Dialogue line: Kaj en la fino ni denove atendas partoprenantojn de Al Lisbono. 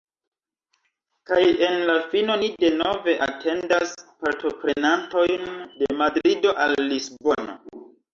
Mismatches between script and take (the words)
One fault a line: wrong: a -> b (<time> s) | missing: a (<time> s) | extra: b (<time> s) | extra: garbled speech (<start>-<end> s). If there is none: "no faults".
extra: Madrido (6.0 s)